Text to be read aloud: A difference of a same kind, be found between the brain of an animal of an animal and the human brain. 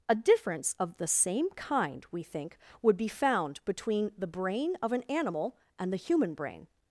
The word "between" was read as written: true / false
true